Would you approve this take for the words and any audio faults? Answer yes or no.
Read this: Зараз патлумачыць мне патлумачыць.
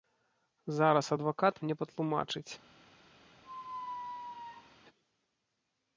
no